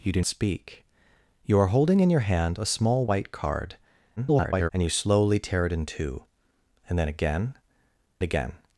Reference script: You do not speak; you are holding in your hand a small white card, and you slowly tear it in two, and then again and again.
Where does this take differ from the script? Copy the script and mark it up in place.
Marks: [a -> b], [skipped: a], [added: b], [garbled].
You do [skipped: not] speak; you are holding in your hand a small white card, [garbled] and you slowly tear it in two, and then again [skipped: and] again.